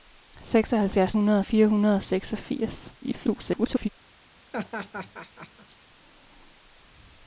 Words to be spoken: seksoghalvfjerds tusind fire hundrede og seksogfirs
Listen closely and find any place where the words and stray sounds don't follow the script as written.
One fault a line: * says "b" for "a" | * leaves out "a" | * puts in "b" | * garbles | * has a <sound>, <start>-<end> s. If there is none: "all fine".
* says "hundrede" for "tusind"
* garbles
* has a laugh, 4.5-5.8 s